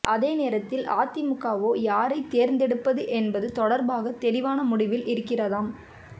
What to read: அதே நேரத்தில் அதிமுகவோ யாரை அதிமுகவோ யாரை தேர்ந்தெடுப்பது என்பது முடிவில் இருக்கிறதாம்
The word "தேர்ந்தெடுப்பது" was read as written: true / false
false